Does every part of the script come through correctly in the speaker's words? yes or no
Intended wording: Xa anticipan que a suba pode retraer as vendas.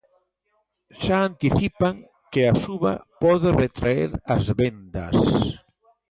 yes